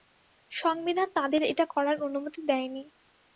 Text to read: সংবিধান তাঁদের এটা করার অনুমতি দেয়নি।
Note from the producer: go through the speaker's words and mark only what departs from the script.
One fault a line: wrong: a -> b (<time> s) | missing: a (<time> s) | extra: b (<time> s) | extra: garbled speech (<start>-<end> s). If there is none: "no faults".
no faults